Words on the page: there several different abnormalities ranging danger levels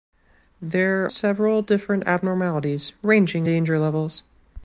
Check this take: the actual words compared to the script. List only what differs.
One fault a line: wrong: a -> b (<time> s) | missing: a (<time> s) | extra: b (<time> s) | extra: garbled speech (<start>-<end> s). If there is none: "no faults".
no faults